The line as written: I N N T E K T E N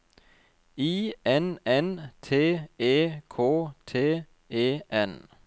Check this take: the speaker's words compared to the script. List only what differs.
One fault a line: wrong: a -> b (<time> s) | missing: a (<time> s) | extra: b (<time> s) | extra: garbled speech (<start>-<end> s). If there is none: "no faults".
no faults